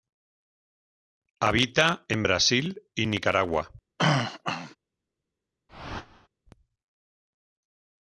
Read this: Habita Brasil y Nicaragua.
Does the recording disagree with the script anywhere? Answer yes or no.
yes